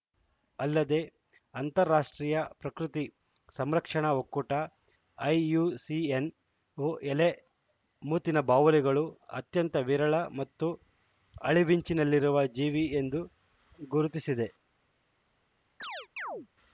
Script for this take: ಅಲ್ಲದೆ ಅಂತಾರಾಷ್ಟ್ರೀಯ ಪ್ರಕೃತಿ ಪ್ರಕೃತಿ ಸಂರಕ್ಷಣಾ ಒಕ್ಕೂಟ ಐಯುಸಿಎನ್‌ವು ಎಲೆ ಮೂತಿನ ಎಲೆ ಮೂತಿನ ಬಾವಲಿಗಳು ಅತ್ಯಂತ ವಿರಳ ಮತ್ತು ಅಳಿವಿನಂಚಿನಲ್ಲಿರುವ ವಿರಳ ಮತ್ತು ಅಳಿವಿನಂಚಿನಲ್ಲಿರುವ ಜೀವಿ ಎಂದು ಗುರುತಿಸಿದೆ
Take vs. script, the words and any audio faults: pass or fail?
fail